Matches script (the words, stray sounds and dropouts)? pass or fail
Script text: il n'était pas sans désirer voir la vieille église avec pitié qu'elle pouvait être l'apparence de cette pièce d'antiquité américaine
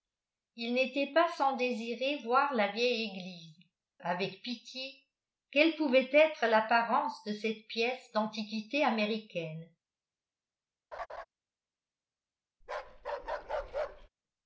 fail